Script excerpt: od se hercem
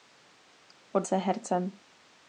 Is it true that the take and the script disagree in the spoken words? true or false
false